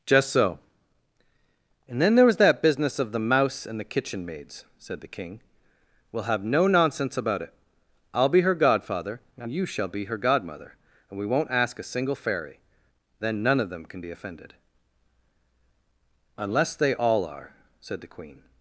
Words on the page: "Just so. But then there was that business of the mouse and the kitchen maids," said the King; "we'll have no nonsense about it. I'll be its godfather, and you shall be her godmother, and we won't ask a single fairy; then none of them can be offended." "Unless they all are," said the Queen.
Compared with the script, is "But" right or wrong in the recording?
wrong